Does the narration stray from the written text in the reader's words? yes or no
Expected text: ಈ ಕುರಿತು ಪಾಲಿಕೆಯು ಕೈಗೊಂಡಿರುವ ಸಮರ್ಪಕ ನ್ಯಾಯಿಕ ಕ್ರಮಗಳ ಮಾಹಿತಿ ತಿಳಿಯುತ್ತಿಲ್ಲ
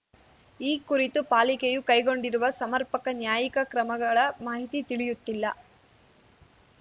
no